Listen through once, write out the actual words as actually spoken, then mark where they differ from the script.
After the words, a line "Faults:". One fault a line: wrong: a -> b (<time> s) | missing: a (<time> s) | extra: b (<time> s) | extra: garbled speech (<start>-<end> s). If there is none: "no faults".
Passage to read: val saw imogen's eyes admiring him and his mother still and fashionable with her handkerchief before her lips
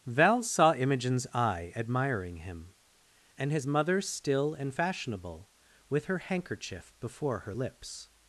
val saw imogen's eye admiring him and his mother still and fashionable with her handkerchief before her lips
Faults:
wrong: eyes -> eye (1.3 s)